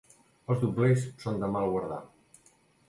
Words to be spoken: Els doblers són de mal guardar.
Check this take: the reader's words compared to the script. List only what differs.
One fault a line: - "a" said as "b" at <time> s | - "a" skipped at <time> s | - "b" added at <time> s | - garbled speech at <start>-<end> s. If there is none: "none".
none